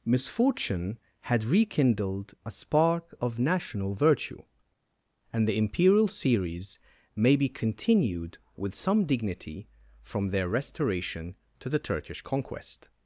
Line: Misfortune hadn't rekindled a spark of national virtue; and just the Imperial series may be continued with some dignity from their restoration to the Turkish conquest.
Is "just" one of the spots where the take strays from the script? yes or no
yes